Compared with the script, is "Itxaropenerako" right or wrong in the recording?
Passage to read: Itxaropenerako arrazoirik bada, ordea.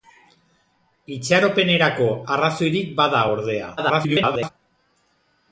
right